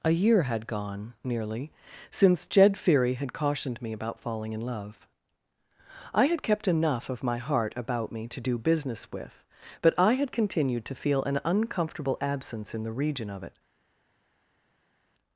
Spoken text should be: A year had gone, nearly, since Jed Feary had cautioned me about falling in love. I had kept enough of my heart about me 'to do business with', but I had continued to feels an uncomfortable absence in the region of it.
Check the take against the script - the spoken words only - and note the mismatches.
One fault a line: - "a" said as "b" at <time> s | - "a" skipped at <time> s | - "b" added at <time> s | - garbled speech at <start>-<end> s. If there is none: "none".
- "feels" said as "feel" at 11.0 s